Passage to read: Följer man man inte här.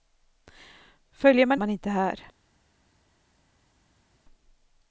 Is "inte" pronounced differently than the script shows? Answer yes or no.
no